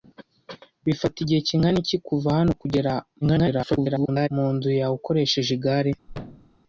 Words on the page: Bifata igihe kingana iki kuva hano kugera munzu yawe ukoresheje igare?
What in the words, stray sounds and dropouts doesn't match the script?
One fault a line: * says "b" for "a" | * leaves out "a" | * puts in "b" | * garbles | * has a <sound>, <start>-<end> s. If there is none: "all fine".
* garbles
* has a thud, 6.1-6.6 s